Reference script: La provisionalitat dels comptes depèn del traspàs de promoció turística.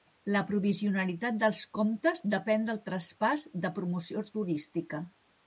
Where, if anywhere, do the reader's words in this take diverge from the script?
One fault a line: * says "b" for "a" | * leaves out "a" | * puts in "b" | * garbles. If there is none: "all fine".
all fine